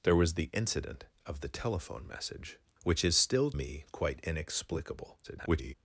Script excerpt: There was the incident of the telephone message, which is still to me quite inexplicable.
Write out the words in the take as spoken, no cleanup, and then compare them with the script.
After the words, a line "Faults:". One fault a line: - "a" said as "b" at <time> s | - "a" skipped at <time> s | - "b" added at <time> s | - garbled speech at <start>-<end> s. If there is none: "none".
There was the incident of the telephone message, which is still me quite inexplicable. [garbled]
Faults:
- "to" skipped at 3.5 s
- garbled speech at 5.2-5.7 s